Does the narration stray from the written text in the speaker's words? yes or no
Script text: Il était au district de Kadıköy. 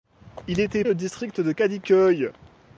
no